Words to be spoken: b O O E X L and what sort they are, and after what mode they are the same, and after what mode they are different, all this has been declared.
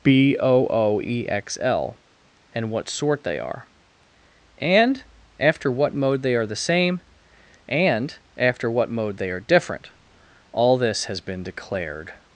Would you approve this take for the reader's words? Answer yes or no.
yes